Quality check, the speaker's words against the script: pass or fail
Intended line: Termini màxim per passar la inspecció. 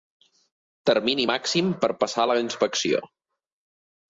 pass